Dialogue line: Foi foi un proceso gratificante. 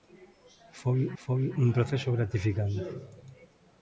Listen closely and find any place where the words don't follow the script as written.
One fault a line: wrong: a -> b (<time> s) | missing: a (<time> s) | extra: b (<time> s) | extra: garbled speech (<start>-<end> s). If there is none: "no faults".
no faults